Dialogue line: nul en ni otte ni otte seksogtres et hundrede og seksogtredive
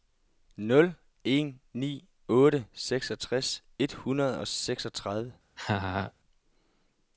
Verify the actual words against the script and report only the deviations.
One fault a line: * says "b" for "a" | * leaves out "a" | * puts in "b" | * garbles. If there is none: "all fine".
* leaves out "ni otte"